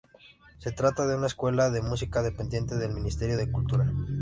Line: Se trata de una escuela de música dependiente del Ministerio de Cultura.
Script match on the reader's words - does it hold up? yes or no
yes